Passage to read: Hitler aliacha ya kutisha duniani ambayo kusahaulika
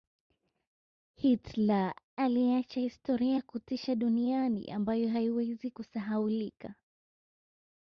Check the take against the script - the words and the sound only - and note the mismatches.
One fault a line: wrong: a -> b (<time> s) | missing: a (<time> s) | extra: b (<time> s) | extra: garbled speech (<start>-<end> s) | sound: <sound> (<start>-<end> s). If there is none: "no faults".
extra: historia (2.8 s)
extra: haiwezi (5.1 s)